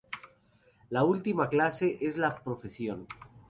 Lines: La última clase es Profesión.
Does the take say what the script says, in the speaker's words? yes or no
no